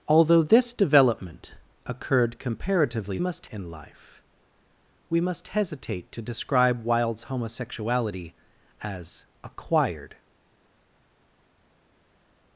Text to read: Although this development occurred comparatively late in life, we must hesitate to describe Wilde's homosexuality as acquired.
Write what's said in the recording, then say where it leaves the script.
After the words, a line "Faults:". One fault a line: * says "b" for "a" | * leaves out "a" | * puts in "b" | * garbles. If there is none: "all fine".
Although this development occurred comparatively must in life, we must hesitate to describe Wilde's homosexuality as acquired.
Faults:
* says "must" for "late"